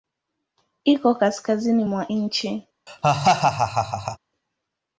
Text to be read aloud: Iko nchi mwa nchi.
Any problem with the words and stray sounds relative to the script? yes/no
yes